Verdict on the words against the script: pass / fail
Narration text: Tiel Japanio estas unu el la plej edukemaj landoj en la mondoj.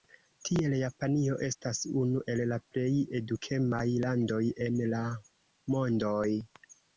pass